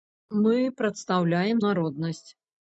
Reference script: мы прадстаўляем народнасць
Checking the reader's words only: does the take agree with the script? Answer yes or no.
yes